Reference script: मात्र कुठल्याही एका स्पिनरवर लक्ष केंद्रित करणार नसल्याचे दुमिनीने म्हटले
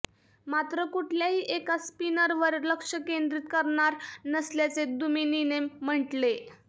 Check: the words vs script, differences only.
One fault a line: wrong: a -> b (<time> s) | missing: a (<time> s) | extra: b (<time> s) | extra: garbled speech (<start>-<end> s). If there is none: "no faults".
no faults